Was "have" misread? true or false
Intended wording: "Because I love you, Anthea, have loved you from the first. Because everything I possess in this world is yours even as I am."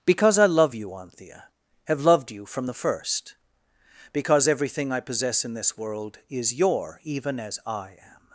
false